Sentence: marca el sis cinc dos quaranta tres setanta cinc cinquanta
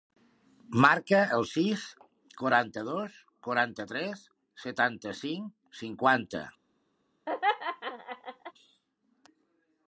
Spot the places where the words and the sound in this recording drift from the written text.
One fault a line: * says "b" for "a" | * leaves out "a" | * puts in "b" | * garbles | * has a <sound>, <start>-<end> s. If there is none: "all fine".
* says "quaranta" for "cinc"
* has a laugh, 7.3-8.5 s